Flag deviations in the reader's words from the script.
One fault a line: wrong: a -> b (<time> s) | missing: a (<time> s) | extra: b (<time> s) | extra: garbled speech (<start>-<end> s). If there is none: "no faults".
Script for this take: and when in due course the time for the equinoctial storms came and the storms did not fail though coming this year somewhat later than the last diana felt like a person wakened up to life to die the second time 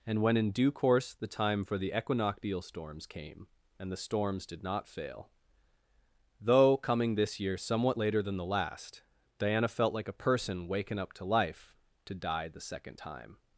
wrong: wakened -> waken (10.7 s)